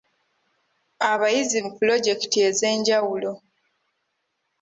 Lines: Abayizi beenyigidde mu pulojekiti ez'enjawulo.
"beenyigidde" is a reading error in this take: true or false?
true